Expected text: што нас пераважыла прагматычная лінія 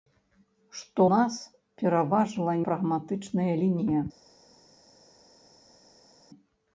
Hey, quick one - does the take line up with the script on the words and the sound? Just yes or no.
yes